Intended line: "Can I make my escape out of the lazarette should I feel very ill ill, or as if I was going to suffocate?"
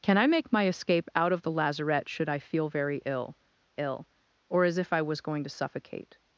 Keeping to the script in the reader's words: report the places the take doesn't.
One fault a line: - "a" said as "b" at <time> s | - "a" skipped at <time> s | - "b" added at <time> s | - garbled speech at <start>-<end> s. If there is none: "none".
none